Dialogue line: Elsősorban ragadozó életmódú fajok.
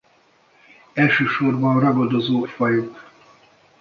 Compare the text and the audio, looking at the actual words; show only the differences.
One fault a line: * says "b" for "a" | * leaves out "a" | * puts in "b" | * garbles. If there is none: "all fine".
* leaves out "életmódú"